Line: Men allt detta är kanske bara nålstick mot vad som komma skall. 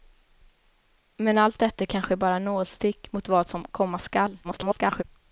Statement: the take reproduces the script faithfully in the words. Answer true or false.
false